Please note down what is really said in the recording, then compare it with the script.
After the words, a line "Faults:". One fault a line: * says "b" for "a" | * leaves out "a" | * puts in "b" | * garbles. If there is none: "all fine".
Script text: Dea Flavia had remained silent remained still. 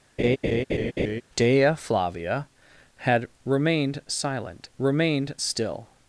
Dea Flavia had remained silent remained still.
Faults:
all fine